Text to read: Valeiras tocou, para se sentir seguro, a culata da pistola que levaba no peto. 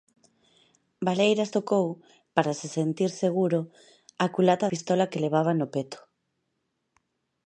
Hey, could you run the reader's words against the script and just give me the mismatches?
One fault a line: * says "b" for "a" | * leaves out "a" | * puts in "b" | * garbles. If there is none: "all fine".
* leaves out "da"